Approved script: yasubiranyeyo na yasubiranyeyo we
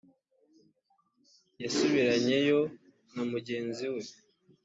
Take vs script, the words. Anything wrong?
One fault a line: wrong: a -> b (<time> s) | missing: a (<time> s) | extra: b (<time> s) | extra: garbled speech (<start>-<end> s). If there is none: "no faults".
wrong: yasubiranyeyo -> mugenzi (3.3 s)